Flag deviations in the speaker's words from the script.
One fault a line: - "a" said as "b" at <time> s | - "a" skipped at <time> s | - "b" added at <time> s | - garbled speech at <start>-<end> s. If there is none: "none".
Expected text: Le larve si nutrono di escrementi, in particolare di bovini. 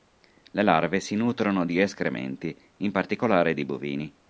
none